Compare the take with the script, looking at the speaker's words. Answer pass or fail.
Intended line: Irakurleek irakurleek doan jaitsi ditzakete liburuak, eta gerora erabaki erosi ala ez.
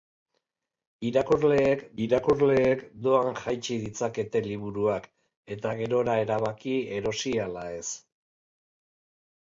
pass